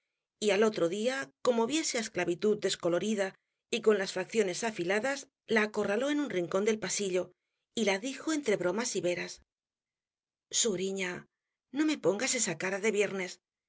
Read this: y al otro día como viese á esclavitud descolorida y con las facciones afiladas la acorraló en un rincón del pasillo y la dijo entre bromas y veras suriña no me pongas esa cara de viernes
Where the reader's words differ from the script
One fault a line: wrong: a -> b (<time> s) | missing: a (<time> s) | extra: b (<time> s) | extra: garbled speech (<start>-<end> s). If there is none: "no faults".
no faults